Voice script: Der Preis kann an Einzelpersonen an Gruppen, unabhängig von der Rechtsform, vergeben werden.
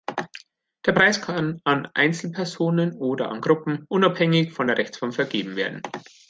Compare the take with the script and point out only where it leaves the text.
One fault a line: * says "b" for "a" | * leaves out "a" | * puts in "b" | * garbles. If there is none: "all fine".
* puts in "oder"